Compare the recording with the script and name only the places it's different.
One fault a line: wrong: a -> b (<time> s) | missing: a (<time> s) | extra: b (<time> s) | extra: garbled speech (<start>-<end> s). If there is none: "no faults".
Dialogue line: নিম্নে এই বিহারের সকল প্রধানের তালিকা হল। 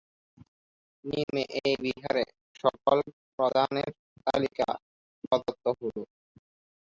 extra: প্রদত্ত (5.2 s)